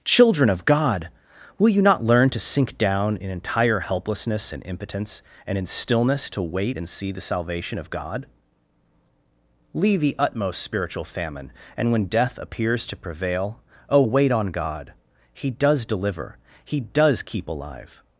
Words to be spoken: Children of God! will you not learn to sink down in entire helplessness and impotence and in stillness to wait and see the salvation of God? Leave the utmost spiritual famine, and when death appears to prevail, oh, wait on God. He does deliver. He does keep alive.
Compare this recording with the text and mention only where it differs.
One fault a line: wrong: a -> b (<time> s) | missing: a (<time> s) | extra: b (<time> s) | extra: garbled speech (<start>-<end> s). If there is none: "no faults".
no faults